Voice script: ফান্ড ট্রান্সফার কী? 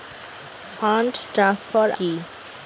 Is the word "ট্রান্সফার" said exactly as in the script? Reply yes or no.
yes